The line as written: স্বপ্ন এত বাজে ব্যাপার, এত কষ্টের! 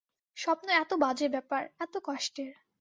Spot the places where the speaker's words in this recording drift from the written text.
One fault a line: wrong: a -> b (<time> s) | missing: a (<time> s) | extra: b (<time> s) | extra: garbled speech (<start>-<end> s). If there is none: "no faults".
no faults